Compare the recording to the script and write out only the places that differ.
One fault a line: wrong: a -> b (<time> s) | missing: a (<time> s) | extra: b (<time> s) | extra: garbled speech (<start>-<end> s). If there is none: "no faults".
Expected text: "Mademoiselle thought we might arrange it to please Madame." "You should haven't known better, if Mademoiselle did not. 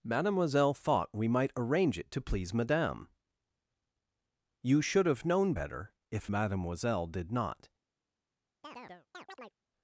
wrong: haven't -> have (5.1 s)